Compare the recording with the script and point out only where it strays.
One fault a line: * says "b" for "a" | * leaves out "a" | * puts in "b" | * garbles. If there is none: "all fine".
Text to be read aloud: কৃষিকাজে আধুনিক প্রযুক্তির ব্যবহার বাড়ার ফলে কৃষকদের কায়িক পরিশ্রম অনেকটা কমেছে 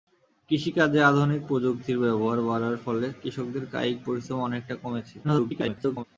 * garbles